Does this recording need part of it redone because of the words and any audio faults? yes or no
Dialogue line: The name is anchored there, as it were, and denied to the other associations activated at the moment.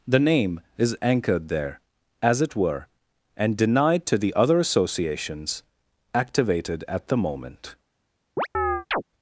yes